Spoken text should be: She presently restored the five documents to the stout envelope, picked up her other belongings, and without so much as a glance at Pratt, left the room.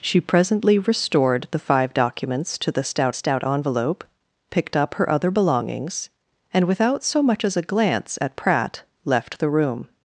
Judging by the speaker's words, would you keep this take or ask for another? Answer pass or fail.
fail